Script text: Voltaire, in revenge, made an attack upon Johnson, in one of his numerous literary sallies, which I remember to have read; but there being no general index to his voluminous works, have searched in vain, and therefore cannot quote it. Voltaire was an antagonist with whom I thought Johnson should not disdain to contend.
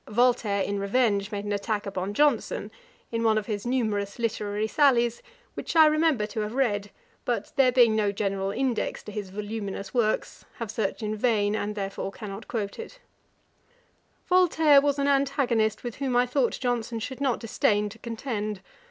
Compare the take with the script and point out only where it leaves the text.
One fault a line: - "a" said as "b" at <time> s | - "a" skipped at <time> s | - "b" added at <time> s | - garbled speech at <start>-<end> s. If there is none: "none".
none